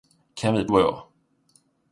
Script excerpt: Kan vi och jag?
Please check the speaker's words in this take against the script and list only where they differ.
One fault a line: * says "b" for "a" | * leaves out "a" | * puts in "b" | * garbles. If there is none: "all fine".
all fine